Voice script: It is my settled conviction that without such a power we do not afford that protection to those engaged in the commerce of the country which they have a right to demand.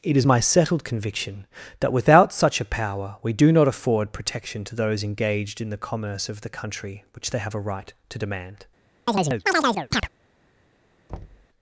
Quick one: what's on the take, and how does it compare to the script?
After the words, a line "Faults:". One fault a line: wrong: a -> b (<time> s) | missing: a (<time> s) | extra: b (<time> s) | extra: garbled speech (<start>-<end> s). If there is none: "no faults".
It is my settled conviction that without such a power we do not afford protection to those engaged in the commerce of the country which they have a right to demand.
Faults:
missing: that (4.1 s)